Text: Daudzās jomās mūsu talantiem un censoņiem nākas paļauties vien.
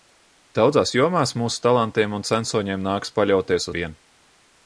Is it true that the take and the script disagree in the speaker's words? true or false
false